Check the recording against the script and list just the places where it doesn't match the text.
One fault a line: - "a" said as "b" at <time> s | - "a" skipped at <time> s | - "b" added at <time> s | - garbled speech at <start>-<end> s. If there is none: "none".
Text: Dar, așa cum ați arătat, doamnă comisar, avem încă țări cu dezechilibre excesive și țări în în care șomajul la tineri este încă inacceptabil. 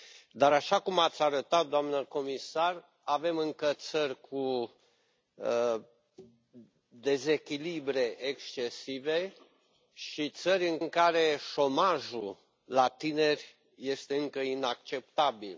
none